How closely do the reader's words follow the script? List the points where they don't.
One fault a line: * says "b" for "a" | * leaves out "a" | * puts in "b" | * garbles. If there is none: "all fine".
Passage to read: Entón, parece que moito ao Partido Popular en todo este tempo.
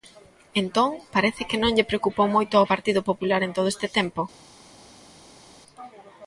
* puts in "non lle preocupou"